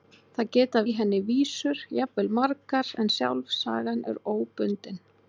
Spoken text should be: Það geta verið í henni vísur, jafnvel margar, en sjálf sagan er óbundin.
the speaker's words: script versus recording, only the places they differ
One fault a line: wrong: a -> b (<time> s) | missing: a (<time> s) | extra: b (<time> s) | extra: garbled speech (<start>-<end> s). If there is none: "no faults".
missing: verið (0.8 s)